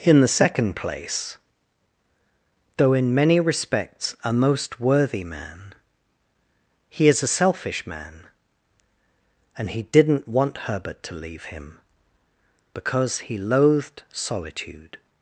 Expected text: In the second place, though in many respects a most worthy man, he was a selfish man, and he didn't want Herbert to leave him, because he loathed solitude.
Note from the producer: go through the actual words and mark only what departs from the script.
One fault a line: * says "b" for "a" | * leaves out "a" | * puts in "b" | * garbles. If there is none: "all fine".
* says "is" for "was"